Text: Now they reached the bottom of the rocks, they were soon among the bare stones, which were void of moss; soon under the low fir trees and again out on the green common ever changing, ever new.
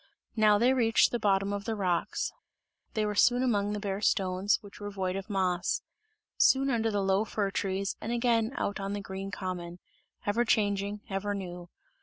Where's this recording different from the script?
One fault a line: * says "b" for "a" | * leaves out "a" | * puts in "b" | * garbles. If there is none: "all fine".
all fine